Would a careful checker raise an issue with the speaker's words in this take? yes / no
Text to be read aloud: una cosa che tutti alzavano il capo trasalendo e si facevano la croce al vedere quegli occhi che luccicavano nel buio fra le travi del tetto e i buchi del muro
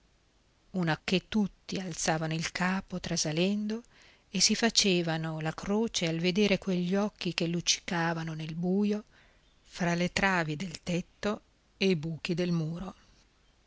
yes